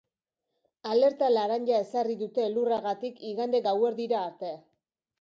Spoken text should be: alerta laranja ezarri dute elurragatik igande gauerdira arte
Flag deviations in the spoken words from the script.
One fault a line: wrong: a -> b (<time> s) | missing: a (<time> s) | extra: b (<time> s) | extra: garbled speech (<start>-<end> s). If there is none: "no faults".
no faults